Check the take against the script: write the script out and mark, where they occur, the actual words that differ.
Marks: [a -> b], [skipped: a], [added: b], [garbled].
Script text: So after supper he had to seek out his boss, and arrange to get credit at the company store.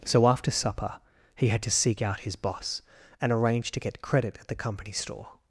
So after supper he had to seek out his boss, and arrange to get credit at the company store.